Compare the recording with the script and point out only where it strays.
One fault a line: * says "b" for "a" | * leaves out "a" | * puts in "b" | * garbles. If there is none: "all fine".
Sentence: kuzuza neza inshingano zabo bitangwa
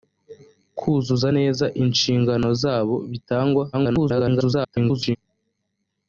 * garbles